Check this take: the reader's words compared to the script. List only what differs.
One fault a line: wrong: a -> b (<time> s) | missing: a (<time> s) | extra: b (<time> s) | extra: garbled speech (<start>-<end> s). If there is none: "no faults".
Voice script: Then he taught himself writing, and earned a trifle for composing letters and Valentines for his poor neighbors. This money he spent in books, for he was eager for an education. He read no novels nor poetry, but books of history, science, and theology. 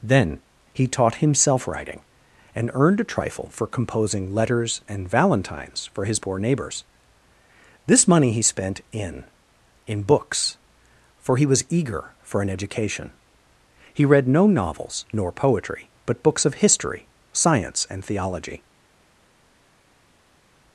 extra: in (9.9 s)